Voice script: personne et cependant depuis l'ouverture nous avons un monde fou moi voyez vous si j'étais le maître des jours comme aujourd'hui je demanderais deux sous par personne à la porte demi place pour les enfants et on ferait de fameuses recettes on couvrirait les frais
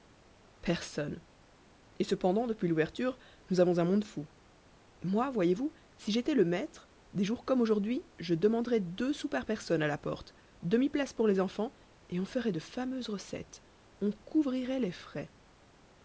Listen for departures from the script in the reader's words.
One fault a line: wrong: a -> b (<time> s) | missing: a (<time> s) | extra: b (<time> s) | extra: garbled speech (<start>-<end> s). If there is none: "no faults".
no faults